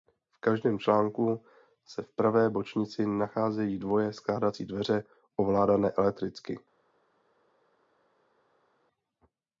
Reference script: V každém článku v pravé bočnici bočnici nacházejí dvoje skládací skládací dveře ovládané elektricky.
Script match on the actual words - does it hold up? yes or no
no